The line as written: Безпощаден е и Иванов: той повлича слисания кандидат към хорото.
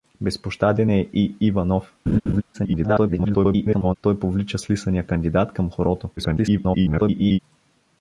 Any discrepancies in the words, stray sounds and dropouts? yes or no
yes